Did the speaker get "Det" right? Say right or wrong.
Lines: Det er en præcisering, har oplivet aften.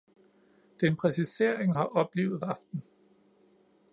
right